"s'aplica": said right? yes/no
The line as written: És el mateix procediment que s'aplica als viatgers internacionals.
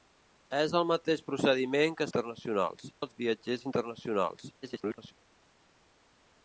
no